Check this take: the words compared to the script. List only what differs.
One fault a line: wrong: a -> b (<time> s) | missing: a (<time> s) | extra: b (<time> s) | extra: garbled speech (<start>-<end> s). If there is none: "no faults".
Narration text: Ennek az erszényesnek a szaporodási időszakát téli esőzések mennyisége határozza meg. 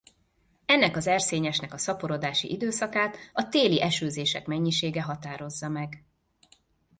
extra: a (3.3 s)